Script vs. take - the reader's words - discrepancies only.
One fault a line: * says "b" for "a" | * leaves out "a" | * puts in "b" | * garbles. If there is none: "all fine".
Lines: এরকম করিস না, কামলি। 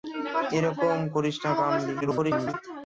* garbles